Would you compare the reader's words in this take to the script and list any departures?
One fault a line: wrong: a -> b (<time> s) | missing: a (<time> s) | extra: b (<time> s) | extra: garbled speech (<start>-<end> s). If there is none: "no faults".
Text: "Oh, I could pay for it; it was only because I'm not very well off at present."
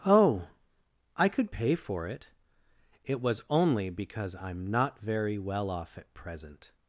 no faults